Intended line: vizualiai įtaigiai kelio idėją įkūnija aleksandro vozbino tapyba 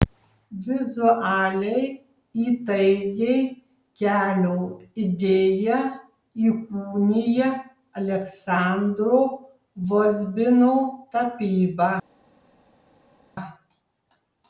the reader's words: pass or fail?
pass